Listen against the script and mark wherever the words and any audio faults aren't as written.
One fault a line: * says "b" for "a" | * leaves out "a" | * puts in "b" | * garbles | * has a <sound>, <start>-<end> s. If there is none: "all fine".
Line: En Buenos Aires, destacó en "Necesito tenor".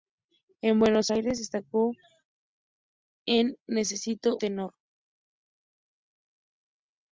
all fine